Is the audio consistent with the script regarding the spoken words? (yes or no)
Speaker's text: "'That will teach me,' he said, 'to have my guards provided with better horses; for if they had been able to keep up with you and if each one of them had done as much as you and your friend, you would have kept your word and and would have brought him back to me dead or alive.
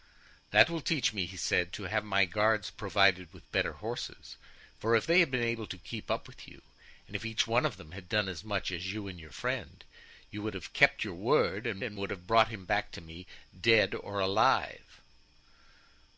yes